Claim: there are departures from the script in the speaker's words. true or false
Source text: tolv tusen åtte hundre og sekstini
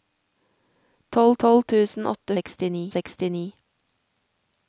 true